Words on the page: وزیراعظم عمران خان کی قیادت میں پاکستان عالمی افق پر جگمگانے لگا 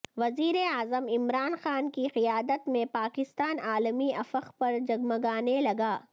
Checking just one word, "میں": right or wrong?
right